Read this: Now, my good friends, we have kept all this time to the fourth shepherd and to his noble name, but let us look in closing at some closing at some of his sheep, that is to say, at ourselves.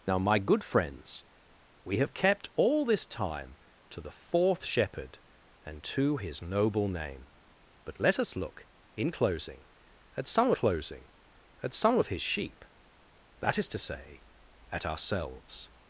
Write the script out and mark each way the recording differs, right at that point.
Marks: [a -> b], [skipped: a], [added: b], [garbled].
Now, my good friends, we have kept all this time to the fourth shepherd and to his noble name, but let us look in closing at some closing at some of his sheep, that is to say, at ourselves.